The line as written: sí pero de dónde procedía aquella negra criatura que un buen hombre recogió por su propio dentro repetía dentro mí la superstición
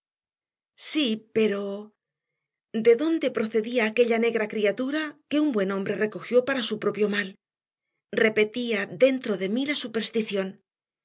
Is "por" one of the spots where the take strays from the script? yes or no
yes